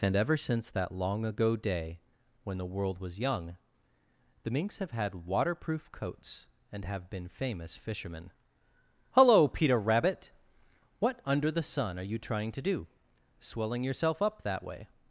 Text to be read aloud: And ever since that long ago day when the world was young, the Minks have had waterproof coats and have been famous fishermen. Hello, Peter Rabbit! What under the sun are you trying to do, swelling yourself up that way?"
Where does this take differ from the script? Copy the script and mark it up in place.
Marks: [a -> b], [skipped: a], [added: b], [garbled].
And ever since that long ago day when the world was young, the Minks have had waterproof coats and have been famous fishermen. Hello, Peter Rabbit! What under the sun are you trying to do, swelling yourself up that way?"